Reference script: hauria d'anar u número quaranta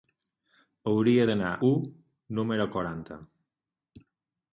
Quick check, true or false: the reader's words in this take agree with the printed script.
true